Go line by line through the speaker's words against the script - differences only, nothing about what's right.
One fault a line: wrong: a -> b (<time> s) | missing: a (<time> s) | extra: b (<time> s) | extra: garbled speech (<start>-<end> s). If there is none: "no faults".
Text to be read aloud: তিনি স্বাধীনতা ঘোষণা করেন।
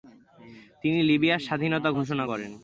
extra: লিবিয়ার (1.1 s)